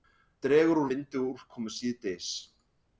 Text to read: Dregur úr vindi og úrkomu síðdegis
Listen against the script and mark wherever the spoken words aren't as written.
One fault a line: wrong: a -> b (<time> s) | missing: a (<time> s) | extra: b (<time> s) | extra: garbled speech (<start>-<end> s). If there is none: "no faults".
no faults